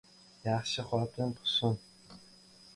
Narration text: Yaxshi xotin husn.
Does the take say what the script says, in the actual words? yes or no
yes